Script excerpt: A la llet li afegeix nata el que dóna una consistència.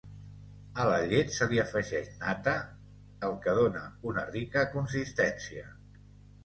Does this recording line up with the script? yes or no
no